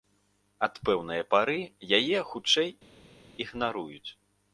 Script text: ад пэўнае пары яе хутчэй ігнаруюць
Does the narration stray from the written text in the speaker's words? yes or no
no